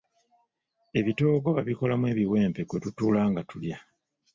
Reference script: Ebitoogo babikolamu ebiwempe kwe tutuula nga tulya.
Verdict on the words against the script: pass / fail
pass